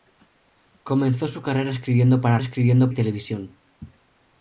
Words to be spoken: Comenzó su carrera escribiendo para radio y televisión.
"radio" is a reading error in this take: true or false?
true